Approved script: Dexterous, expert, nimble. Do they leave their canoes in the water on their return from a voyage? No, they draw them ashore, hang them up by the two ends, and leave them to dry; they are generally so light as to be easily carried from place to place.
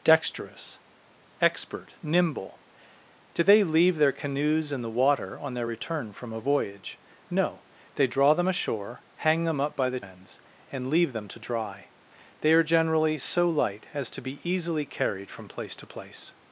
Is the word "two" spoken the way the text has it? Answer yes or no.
no